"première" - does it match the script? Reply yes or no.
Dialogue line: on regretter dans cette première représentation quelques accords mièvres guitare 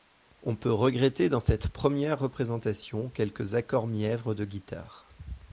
yes